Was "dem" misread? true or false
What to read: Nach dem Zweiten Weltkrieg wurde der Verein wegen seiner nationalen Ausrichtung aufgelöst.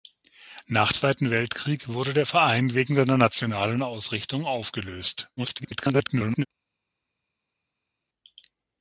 true